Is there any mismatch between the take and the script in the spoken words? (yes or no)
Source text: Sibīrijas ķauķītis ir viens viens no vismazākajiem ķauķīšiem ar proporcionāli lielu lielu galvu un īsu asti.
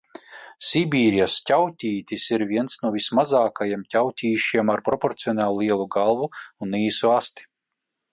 yes